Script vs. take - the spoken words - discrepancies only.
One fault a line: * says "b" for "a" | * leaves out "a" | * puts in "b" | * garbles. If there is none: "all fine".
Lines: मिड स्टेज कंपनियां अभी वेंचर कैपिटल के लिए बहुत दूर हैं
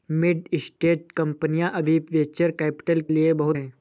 * leaves out "के"
* leaves out "दूर"